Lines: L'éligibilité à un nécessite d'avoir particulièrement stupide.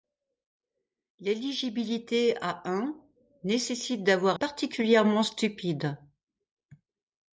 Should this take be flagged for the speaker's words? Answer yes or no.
no